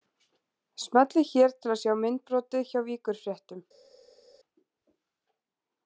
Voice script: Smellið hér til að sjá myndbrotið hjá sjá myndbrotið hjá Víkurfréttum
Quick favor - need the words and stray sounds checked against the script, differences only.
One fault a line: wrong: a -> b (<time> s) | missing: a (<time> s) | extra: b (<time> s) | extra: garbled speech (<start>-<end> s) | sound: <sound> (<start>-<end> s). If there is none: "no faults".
missing: sjá myndbrotið hjá (2.9 s)